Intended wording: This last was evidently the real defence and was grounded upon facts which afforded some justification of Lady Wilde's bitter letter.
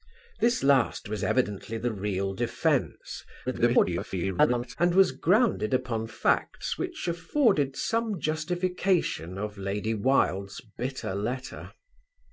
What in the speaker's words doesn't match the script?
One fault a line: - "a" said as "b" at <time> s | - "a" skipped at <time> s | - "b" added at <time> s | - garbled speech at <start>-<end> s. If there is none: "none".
- garbled speech at 3.5-4.8 s